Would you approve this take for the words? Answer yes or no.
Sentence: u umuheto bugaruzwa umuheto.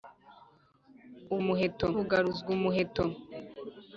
yes